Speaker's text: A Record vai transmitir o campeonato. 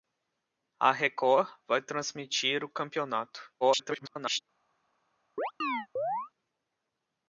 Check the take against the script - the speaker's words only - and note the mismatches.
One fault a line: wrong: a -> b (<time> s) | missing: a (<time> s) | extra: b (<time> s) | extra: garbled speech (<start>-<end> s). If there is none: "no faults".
extra: garbled speech (3.6-4.4 s)